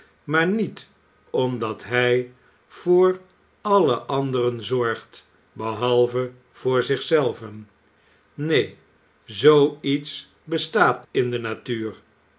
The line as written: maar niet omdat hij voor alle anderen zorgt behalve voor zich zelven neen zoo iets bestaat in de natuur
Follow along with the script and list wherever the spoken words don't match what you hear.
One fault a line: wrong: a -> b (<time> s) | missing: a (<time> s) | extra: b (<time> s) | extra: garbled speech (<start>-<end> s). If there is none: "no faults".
no faults